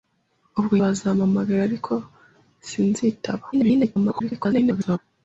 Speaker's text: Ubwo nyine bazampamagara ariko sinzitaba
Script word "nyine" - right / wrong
wrong